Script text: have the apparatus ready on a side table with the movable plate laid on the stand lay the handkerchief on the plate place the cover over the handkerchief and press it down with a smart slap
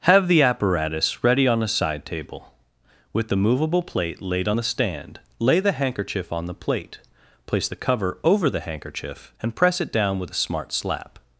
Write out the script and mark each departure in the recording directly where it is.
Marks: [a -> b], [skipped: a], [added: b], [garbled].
have the apparatus ready on a side table with the movable plate laid on the stand lay the handkerchief on the plate place the cover over the handkerchief and press it down with a smart slap